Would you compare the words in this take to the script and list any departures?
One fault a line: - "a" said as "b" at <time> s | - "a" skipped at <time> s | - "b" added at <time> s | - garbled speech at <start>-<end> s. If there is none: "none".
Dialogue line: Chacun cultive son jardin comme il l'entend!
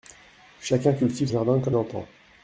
- "son" skipped at 1.3 s
- "il" skipped at 1.8 s